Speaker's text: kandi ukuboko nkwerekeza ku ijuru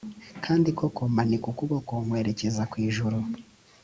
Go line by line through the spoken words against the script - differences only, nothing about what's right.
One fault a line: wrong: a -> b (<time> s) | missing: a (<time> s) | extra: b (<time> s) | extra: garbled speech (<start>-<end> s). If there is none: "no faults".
extra: koko manika (0.8 s)